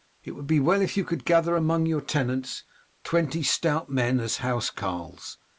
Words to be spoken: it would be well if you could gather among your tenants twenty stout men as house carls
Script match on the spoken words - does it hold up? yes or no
yes